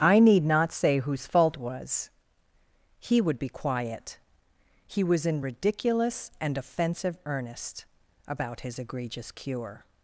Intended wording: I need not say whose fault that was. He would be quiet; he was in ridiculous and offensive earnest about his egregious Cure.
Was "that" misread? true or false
true